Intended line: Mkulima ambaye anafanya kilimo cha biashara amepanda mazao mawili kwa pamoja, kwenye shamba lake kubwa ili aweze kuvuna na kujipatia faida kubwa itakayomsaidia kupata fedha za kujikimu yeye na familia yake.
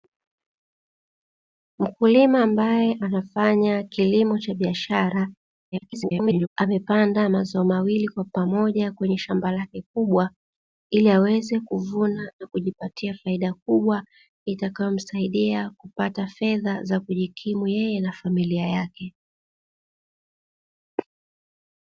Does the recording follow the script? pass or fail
fail